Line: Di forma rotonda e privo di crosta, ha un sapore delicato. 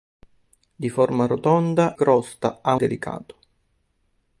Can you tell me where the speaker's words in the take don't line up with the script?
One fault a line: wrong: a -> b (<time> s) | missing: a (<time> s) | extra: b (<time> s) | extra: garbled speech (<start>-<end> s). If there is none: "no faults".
missing: e privo di (1.9 s)
missing: un sapore (2.8 s)